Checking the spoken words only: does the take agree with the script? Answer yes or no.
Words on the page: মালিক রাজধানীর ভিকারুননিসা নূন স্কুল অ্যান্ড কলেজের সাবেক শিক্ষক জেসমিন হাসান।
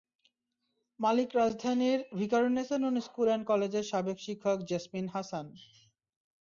yes